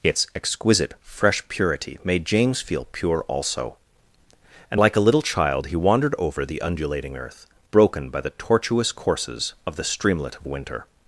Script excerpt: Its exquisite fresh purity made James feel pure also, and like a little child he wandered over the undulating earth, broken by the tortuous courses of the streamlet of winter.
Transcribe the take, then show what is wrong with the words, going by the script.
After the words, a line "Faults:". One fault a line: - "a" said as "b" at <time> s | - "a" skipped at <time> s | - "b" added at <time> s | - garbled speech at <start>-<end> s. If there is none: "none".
Its exquisite fresh purity made James feel pure also, and like a little child he wandered over the undulating earth, broken by the tortuous courses of the streamlet of winter.
Faults:
none